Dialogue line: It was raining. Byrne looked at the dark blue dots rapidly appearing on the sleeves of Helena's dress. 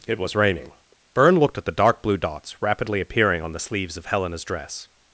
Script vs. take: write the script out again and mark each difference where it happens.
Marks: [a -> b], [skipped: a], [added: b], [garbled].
It was raining. Byrne looked at the dark blue dots rapidly appearing on the sleeves of Helena's dress.